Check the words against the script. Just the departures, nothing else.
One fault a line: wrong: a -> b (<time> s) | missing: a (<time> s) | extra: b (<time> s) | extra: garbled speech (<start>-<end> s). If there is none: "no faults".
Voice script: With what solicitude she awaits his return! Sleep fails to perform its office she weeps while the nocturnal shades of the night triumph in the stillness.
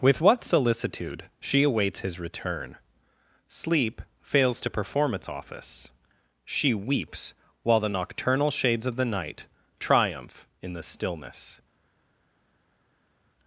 no faults